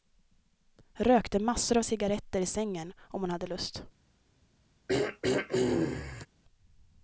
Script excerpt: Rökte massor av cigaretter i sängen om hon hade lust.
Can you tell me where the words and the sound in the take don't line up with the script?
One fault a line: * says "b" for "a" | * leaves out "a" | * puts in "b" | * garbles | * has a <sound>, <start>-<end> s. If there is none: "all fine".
* has a throat clearing, 4.9-6.3 s